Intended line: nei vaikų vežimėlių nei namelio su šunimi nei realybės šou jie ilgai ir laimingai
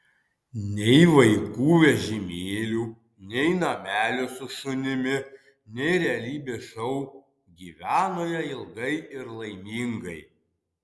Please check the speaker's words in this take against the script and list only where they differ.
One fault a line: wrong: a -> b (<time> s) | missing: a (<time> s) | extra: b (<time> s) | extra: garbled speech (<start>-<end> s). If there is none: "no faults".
extra: gyveno (7.6 s)